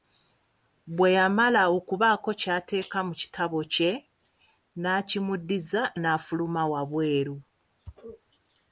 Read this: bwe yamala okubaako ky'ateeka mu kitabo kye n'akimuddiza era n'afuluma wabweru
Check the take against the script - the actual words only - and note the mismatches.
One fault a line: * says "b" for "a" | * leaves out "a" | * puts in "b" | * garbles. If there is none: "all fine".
* leaves out "era"